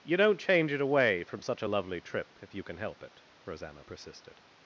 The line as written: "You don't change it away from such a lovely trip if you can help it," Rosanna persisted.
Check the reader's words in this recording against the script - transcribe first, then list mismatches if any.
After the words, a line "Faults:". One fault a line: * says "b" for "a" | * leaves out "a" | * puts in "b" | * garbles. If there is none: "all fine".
"You don't change it away from such a lovely trip if you can help it," Rosanna persisted.
Faults:
all fine